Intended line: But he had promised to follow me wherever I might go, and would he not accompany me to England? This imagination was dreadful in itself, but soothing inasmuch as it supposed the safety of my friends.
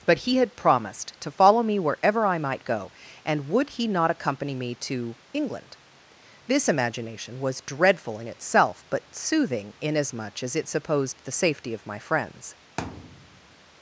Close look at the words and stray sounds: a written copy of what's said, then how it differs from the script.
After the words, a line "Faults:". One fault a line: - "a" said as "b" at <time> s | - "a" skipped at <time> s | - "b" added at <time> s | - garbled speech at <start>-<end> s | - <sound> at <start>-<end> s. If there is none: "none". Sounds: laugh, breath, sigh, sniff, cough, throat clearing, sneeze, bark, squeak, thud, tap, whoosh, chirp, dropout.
But he had promised to follow me wherever I might go, and would he not accompany me to England? This imagination was dreadful in itself, but soothing inasmuch as it supposed the safety of my friends.
Faults:
- thud at 12.8-13.6 s